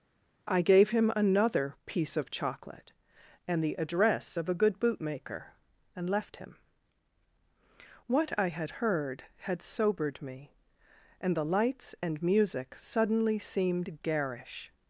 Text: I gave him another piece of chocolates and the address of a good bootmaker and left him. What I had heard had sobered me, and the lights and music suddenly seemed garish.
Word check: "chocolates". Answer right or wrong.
wrong